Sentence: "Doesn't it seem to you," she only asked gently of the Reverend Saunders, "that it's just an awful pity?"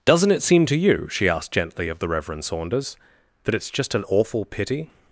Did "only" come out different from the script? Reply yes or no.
yes